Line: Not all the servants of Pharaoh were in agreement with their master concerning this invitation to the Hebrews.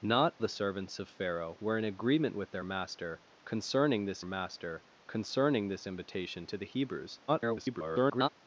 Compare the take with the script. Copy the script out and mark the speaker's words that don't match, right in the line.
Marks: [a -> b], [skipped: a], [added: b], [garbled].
Not [skipped: all] the servants of Pharaoh were in agreement with their master concerning this [added: master concerning this] invitation to the Hebrews. [garbled]